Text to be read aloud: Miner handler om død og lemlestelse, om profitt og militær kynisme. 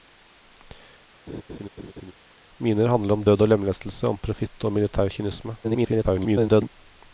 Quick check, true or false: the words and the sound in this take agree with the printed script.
false